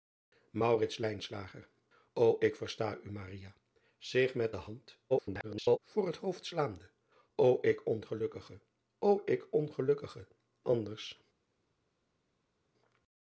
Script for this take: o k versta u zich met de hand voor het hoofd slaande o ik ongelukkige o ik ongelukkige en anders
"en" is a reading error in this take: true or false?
true